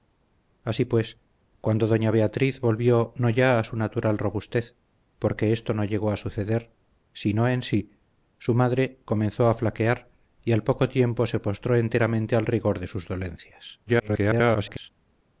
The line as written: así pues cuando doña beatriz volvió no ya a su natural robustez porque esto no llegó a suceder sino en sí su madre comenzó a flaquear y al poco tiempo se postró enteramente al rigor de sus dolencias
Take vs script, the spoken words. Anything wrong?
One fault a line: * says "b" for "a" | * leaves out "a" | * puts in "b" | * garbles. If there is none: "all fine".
* garbles